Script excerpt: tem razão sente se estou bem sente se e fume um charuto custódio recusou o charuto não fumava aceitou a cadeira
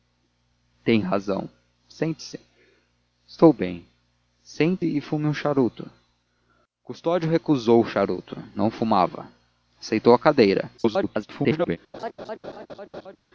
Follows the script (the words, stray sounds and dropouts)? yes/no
no